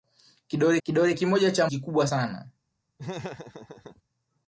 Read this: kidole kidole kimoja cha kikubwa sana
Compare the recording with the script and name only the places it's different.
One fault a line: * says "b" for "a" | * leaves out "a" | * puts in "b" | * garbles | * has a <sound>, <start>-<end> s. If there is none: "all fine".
* has a laugh, 3.0-4.0 s